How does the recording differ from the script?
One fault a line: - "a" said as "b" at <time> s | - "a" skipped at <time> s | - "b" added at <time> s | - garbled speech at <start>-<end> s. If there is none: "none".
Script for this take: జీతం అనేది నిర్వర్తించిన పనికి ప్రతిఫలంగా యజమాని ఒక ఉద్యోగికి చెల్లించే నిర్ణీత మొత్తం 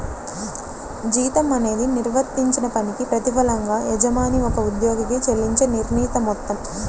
none